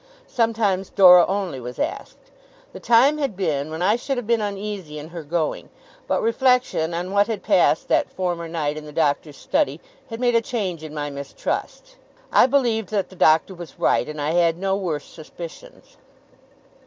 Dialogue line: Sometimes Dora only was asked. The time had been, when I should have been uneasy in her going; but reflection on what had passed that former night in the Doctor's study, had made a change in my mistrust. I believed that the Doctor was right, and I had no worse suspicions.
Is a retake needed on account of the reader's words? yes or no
no